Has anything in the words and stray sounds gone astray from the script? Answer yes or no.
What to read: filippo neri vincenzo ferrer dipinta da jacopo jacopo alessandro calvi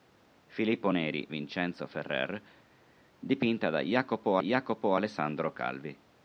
no